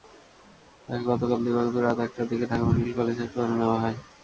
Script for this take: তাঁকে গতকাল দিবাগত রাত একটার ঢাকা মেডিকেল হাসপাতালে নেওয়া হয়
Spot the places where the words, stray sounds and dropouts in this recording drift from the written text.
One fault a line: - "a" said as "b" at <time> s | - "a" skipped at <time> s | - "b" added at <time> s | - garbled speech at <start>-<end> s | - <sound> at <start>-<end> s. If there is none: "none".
- "দিকে" added at 2.3 s
- "কলেজ" added at 3.0 s